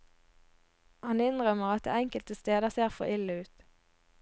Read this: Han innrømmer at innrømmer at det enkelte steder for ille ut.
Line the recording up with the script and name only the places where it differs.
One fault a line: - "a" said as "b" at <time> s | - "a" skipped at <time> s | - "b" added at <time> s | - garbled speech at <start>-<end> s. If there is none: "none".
- "innrømmer at" skipped at 1.9 s
- "ser" added at 2.7 s